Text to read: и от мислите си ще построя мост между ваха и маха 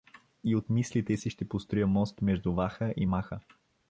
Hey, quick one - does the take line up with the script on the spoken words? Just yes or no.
yes